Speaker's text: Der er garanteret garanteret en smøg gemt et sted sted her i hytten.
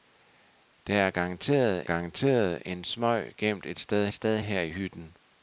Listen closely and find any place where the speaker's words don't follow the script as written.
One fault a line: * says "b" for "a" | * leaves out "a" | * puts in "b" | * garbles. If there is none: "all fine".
all fine